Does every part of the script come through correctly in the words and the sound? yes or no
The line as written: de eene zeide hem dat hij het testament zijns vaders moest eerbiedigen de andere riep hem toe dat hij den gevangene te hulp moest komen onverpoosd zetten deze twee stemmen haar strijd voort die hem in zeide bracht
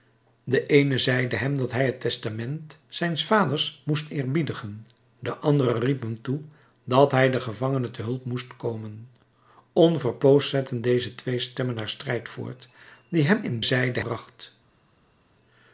yes